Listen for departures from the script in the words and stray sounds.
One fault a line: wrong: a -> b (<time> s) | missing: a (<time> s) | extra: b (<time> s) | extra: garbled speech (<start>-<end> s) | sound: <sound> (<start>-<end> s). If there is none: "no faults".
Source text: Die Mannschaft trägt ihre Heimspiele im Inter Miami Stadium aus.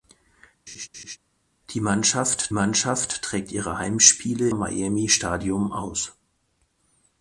sound: laugh (0.7-1.2 s)
extra: Mannschaft (2.5 s)
missing: im Inter (4.5 s)